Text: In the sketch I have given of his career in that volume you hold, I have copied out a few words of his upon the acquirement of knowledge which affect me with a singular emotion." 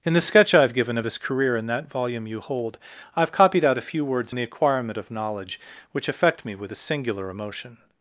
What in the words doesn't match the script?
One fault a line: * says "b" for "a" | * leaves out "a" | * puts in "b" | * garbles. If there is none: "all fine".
* leaves out "of his upon"